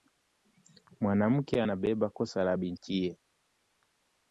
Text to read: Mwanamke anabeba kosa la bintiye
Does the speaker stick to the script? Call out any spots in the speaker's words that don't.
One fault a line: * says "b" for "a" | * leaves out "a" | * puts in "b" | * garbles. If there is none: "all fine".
all fine